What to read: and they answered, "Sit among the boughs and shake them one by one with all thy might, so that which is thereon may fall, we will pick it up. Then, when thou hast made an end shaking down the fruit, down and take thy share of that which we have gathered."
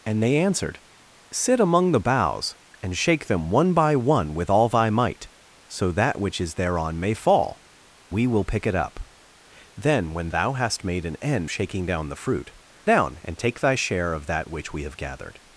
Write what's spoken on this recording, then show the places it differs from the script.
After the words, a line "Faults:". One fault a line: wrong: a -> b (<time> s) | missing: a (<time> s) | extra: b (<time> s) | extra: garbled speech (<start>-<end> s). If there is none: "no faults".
and they answered, "Sit among the boughs and shake them one by one with all thy might, so that which is thereon may fall, we will pick it up. Then, when thou hast made an end shaking down the fruit, down and take thy share of that which we have gathered."
Faults:
no faults